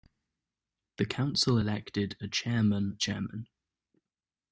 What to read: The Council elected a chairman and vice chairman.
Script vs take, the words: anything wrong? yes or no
yes